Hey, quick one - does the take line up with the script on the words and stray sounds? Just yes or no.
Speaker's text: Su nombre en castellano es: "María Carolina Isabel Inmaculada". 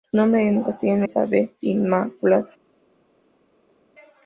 no